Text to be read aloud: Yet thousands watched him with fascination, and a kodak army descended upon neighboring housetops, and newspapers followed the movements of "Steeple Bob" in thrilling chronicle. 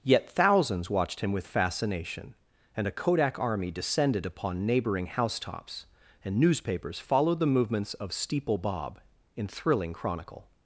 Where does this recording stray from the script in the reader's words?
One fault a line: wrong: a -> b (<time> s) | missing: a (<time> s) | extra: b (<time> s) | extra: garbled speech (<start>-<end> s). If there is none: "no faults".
no faults